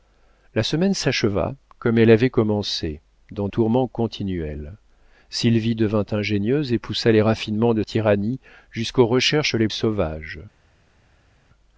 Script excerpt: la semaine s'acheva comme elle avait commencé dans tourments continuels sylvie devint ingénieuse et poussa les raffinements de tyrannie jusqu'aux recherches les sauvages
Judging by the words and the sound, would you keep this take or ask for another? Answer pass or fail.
pass